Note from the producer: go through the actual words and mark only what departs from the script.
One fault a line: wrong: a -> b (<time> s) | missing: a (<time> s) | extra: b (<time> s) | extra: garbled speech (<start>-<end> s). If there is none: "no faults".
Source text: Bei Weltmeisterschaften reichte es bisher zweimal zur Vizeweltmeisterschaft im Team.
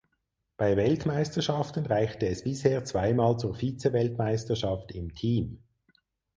no faults